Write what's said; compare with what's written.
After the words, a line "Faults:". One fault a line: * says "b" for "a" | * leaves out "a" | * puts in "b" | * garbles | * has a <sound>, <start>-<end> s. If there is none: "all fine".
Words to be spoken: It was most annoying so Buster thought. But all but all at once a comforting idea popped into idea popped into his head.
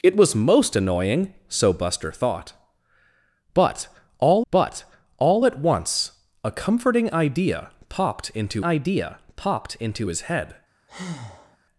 It was most annoying so Buster thought. But all but all at once a comforting idea popped into idea popped into his head.
Faults:
* has a breath, 10.9-11.6 s